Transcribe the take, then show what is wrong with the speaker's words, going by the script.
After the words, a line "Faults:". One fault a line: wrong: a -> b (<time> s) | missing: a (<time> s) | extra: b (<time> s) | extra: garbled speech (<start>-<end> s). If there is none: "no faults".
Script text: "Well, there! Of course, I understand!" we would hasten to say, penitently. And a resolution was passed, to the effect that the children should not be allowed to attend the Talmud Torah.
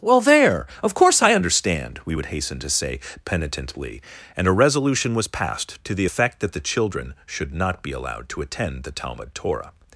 "Well, there! Of course, I understand!" we would hasten to say, penitently. And a resolution was passed, to the effect that the children should not be allowed to attend the Talmud Torah.
Faults:
no faults